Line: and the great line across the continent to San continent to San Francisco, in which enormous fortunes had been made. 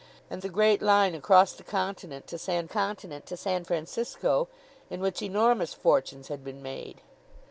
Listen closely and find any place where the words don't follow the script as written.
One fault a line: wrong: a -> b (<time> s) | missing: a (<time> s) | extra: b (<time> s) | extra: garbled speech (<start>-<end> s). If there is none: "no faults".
no faults